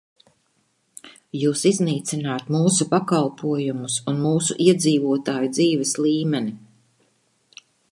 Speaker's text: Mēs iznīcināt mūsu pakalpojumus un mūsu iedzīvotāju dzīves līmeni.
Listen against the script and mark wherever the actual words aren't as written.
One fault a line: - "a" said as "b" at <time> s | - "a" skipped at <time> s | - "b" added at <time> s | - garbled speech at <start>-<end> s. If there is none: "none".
- "Mēs" said as "Jūs" at 1.4 s